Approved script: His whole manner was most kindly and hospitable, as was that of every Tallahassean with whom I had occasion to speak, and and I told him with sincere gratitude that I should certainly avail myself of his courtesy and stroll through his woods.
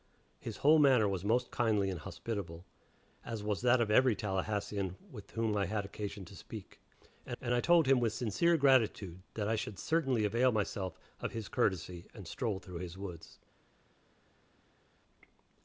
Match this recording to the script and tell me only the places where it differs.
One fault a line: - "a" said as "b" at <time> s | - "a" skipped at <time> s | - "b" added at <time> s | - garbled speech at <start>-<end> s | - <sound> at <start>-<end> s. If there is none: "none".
none